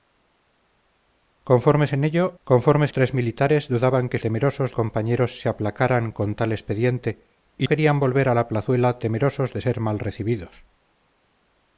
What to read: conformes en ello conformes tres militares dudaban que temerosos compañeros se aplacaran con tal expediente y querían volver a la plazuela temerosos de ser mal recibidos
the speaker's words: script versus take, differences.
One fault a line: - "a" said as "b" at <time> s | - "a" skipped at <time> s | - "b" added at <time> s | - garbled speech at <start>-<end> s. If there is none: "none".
none